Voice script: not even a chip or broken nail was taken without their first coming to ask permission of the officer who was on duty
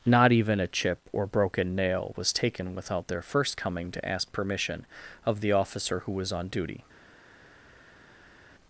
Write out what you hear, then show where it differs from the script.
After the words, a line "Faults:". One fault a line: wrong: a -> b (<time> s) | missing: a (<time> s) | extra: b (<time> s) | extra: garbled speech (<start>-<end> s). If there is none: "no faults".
not even a chip or broken nail was taken without their first coming to ask permission of the officer who was on duty
Faults:
no faults